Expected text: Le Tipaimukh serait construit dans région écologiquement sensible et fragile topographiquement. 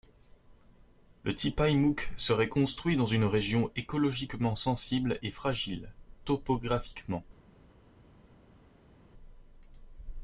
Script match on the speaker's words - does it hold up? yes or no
no